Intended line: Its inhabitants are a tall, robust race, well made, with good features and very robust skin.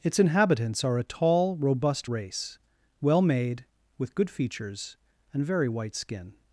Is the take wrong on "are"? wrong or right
right